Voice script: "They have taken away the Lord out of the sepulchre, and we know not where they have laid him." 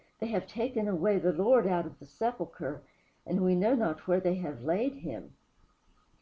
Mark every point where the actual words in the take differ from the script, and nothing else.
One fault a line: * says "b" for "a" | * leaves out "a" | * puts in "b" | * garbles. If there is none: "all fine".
all fine